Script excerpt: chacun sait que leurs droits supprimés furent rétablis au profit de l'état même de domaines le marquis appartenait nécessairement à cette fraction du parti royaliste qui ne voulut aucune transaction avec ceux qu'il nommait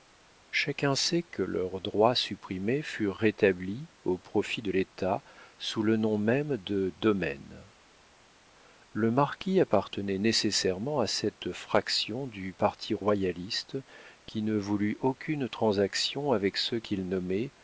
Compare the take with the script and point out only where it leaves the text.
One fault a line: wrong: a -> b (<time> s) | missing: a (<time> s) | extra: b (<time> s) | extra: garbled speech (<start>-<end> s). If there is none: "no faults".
extra: sous le nom (5.6 s)